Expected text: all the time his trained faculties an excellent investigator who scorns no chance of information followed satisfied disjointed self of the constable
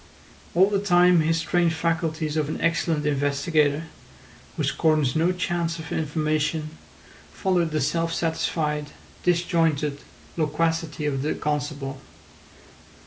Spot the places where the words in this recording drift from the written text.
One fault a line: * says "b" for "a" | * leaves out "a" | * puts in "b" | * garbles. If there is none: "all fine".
* puts in "of"
* puts in "the self"
* says "loquacity" for "self"